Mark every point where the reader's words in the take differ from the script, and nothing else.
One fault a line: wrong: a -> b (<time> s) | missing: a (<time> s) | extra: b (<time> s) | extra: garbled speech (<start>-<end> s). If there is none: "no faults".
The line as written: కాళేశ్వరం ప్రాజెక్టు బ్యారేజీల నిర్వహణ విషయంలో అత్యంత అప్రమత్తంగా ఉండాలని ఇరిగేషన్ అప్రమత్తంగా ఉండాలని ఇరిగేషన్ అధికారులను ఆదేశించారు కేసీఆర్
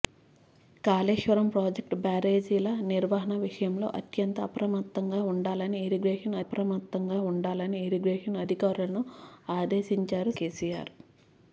no faults